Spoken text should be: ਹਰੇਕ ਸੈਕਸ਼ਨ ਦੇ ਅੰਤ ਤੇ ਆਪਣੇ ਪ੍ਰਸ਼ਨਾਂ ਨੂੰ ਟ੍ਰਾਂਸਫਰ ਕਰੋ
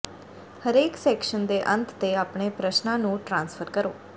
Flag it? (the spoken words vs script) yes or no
no